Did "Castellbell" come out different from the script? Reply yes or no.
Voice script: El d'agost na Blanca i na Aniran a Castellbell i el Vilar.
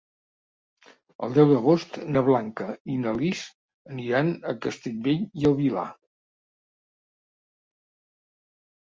no